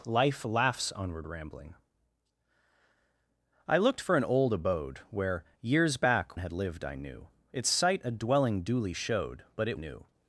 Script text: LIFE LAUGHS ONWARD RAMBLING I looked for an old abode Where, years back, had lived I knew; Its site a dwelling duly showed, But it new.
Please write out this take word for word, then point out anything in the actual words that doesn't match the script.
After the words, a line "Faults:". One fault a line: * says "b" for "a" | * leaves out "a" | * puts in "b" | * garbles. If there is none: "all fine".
LIFE LAUGHS ONWARD RAMBLING I looked for an old abode Where, years back, had lived I knew; Its site a dwelling duly showed, But it new.
Faults:
all fine